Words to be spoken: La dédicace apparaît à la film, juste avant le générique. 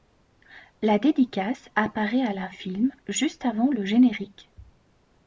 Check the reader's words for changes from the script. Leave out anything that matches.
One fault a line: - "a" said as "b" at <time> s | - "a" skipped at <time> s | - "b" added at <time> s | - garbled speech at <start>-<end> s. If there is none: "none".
none